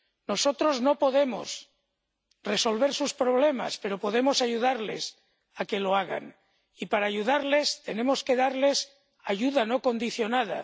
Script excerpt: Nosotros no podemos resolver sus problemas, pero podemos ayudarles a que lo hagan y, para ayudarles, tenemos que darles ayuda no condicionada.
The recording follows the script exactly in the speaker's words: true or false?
true